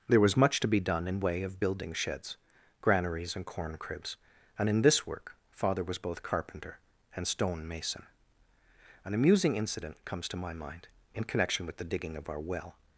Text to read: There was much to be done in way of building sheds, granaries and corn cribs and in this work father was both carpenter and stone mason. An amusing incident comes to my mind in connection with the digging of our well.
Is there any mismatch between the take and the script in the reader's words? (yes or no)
no